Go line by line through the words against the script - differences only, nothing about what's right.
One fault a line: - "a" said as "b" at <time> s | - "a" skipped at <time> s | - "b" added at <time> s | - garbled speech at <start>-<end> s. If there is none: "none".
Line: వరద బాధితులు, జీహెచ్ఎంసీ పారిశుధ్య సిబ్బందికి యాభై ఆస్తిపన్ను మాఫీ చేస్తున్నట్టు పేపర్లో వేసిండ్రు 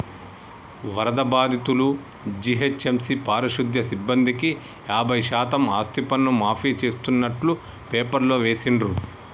- "శాతం" added at 5.3 s